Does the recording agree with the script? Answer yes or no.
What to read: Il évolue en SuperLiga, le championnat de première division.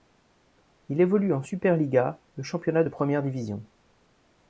yes